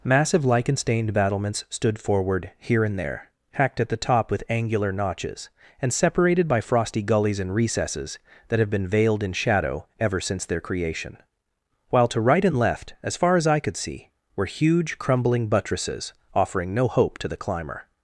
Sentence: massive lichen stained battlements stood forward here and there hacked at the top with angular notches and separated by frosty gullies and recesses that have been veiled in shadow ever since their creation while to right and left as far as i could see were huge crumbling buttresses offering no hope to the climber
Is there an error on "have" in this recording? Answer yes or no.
no